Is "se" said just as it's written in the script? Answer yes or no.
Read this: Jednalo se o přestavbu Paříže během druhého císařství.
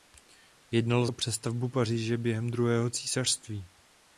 no